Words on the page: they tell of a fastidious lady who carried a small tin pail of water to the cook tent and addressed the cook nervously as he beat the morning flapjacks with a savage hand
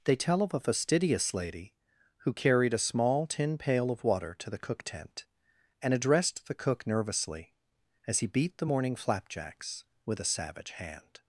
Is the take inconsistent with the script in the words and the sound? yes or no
no